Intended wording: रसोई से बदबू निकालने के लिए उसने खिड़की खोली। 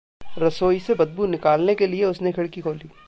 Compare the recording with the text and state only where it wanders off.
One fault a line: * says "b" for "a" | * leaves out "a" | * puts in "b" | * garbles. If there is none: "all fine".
all fine